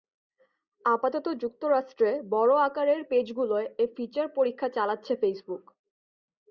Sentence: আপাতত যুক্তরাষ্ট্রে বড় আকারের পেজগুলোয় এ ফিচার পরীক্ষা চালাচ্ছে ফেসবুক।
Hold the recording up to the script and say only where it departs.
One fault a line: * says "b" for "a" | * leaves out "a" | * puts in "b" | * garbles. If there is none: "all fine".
all fine